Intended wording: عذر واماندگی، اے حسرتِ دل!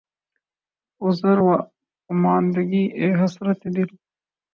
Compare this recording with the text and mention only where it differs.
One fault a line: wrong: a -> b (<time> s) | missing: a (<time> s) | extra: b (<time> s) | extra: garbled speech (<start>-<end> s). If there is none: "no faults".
no faults